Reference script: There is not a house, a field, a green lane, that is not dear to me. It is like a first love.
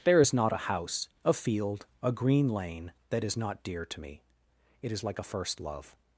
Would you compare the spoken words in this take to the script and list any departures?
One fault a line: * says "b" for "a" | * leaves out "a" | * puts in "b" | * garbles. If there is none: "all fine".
all fine